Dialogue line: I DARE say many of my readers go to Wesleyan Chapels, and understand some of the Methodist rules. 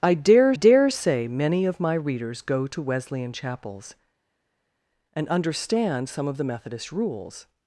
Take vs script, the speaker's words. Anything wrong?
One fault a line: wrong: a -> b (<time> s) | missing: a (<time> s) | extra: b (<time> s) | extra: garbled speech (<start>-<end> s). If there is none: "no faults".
extra: DARE (0.5 s)